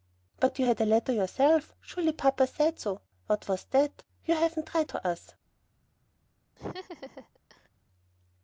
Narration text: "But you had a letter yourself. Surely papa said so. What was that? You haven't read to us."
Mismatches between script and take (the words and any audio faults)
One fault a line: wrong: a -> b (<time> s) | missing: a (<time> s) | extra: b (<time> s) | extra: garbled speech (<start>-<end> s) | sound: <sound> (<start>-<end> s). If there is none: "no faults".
sound: laugh (6.6-7.7 s)